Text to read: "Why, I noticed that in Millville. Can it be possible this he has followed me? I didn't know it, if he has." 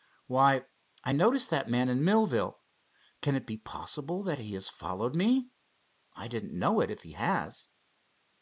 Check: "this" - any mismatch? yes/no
yes